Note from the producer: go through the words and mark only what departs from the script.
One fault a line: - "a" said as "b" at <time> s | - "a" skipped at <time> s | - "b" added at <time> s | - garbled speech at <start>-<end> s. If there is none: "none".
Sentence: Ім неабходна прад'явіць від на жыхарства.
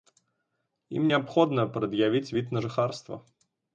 none